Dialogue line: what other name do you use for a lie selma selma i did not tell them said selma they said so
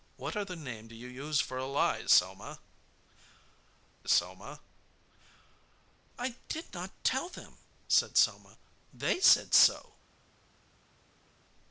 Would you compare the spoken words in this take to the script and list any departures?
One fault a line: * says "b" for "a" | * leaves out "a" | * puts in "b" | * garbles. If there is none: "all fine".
all fine